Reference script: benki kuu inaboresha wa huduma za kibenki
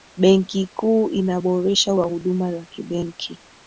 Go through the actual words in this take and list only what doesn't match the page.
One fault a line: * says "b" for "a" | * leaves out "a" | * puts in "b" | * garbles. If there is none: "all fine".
all fine